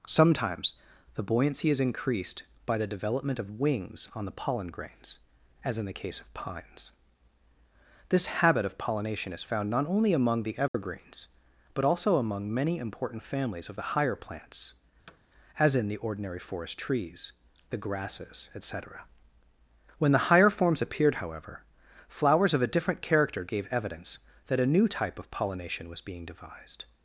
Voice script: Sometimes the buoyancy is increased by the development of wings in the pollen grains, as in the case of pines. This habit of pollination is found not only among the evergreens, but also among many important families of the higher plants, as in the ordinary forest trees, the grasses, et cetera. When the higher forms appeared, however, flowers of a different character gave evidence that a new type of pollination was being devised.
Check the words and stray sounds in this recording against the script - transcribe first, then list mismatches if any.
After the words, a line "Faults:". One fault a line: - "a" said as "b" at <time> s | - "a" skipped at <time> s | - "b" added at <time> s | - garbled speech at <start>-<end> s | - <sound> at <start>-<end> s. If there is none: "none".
Sometimes the buoyancy is increased by the development of wings on the pollen grains, as in the case of pines. This habit of pollination is found not only among the evergreens, but also among many important families of the higher plants, as in the ordinary forest trees, the grasses, et cetera. When the higher forms appeared, however, flowers of a different character gave evidence that a new type of pollination was being devised.
Faults:
- "in" said as "on" at 4.1 s
- dropout at 10.7-10.7 s
- thud at 15.1-15.2 s